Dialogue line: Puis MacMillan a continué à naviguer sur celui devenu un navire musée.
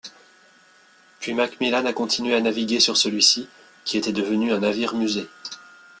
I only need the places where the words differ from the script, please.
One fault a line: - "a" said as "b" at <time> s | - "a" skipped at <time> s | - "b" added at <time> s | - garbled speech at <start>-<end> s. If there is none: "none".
- "ci qui était" added at 3.2 s